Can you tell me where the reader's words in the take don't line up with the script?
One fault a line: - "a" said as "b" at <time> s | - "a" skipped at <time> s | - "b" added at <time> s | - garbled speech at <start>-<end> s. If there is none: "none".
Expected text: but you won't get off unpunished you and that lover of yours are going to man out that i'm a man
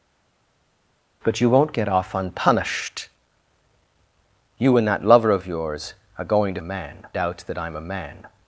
none